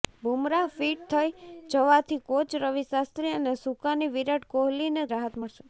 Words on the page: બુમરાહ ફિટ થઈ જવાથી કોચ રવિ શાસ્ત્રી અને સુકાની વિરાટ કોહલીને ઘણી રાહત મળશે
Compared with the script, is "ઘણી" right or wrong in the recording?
wrong